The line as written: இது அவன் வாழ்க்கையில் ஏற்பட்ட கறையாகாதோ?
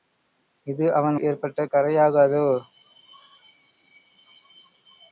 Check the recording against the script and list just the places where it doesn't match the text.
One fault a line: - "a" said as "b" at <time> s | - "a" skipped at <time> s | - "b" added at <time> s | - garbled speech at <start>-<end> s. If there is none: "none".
- "வாழ்க்கையில்" skipped at 1.2 s